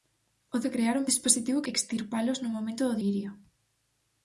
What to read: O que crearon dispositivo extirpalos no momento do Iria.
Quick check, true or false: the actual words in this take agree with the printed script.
true